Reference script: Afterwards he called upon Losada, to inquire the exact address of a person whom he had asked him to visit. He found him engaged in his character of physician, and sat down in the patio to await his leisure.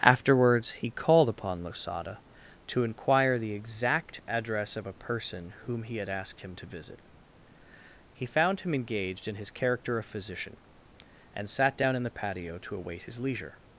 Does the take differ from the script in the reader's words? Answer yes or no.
no